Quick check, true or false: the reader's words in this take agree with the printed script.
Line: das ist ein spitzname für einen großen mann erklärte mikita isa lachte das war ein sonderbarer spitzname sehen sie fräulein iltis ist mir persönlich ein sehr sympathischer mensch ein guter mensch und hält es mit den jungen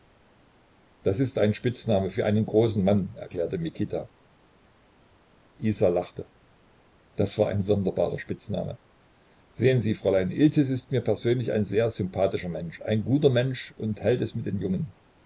true